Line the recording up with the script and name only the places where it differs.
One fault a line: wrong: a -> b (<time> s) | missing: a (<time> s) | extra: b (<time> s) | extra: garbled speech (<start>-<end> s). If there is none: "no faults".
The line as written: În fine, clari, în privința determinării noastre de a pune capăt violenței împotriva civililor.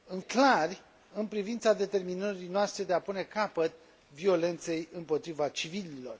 missing: fine (0.2 s)